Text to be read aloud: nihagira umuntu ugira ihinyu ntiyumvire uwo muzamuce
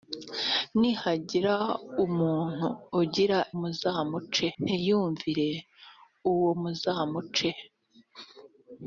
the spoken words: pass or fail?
fail